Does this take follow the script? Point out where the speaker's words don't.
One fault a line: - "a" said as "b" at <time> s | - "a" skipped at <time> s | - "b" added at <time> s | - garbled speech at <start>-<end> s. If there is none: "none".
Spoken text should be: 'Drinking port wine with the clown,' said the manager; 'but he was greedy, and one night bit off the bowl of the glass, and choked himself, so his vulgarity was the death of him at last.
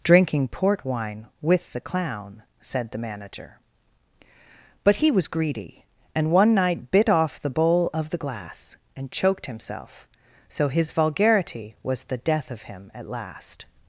none